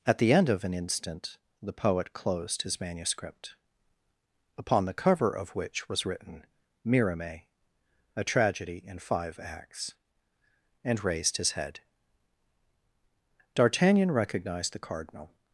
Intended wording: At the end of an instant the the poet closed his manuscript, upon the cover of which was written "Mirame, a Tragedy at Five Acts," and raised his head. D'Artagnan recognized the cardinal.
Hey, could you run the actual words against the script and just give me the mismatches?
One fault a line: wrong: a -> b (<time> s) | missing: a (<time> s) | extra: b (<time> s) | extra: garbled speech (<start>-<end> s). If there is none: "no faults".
missing: the (1.7 s)
wrong: at -> in (8.8 s)